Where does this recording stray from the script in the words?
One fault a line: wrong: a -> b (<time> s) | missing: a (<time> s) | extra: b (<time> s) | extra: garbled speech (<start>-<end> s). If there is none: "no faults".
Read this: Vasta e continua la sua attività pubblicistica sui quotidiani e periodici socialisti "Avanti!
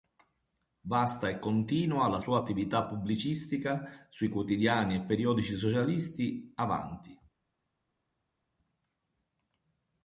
no faults